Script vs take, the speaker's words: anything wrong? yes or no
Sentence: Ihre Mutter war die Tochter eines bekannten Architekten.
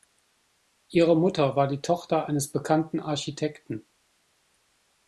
no